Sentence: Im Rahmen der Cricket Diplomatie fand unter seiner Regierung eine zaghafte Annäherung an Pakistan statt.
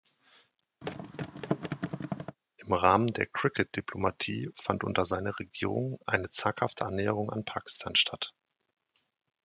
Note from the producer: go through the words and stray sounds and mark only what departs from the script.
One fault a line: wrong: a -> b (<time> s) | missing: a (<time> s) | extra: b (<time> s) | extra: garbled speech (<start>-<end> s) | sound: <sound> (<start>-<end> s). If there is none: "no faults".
sound: thud (0.8-2.4 s)